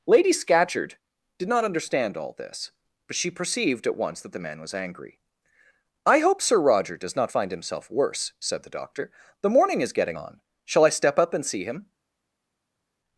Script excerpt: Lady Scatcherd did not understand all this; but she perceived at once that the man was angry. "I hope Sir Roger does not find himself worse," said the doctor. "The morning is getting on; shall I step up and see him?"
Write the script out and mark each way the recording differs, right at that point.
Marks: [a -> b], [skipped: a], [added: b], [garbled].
Lady Scatcherd did not understand all this; but she perceived at once that the man was angry. "I hope Sir Roger does not find himself worse," said the doctor. "The morning is getting on; shall I step up and see him?"